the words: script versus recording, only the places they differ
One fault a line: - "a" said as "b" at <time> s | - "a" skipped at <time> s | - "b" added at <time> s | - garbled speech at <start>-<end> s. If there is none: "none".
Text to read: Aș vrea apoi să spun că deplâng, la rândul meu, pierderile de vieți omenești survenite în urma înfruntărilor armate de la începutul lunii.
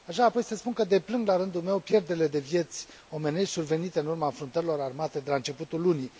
none